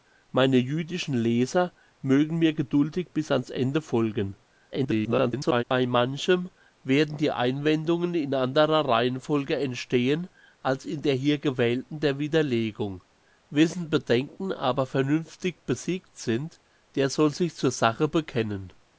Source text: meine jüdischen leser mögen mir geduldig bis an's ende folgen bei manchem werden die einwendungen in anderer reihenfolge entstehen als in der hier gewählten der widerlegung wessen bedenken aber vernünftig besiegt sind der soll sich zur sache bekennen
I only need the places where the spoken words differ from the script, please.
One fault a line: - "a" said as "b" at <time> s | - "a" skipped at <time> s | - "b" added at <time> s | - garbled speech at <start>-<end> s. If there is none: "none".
- garbled speech at 4.7-5.6 s